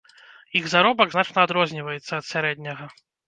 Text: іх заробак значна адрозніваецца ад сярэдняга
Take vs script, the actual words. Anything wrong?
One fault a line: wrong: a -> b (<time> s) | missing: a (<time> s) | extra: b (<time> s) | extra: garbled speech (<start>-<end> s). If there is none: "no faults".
no faults